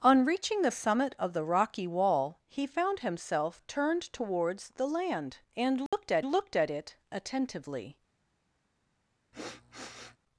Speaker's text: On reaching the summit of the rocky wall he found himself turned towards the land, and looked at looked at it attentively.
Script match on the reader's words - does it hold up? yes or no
yes